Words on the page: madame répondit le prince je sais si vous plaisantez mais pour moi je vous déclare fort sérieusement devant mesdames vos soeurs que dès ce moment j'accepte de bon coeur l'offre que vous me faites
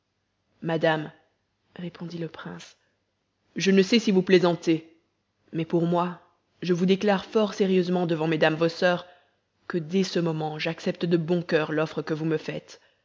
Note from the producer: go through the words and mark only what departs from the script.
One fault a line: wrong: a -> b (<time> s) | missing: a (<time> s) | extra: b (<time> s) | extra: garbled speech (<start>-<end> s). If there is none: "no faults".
extra: ne (3.7 s)